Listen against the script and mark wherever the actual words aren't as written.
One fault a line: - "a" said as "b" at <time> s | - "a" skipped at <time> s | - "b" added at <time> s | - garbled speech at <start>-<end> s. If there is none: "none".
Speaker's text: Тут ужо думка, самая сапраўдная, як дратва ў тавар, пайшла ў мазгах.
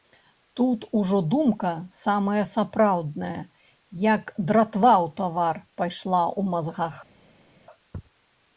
none